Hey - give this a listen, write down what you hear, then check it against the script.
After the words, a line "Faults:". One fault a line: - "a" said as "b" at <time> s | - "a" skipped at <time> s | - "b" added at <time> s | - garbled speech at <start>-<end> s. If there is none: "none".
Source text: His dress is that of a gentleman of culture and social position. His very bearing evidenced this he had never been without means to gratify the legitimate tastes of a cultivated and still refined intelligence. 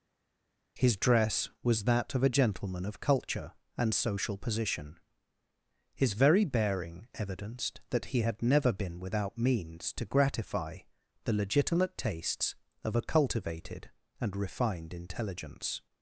His dress was that of a gentleman of culture and social position. His very bearing evidenced that he had never been without means to gratify the legitimate tastes of a cultivated and refined intelligence.
Faults:
- "is" said as "was" at 1.6 s
- "this" said as "that" at 7.9 s
- "still" skipped at 14.4 s